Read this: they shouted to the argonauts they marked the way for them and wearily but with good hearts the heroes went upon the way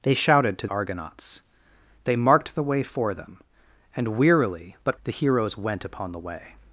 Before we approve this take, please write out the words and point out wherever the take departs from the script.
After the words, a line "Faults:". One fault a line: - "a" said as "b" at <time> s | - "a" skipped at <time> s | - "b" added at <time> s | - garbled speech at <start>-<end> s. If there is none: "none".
they shouted to argonauts they marked the way for them and wearily but the heroes went upon the way
Faults:
- "the" skipped at 0.7 s
- "with good hearts" skipped at 5.0 s